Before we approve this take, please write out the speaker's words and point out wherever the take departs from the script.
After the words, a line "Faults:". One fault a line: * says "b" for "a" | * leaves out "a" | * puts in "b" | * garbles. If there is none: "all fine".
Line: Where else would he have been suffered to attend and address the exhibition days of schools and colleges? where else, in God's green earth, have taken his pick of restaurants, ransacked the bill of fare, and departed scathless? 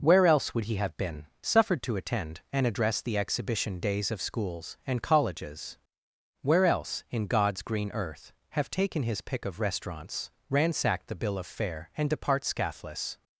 Where else would he have been suffered to attend and address the exhibition days of schools and colleges? where else, in God's green earth, have taken his pick of restaurants, ransacked the bill of fare, and depart scathless?
Faults:
* says "depart" for "departed"